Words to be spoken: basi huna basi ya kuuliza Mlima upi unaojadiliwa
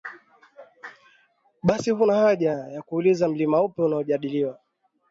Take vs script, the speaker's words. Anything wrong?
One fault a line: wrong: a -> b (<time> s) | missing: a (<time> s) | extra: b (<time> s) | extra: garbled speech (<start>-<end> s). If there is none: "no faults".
wrong: basi -> haja (2.1 s)